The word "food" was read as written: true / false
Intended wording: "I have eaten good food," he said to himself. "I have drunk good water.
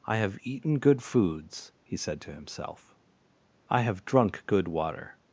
false